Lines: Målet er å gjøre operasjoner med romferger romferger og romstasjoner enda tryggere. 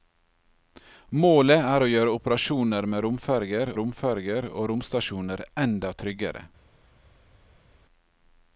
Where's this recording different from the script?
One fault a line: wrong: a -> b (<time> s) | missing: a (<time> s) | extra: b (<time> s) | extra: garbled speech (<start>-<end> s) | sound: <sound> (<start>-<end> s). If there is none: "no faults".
no faults